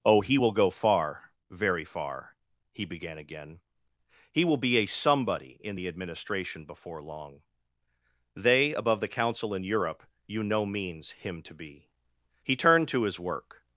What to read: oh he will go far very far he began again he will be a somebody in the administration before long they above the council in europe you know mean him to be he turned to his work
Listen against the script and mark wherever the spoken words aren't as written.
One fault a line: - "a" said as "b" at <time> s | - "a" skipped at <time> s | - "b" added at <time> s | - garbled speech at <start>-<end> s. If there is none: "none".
- "mean" said as "means" at 10.7 s